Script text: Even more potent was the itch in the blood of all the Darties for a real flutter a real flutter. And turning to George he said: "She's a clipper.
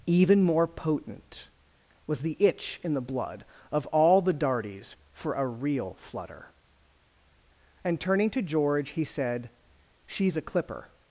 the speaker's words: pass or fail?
fail